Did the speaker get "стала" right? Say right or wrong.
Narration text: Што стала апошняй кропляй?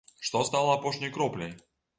right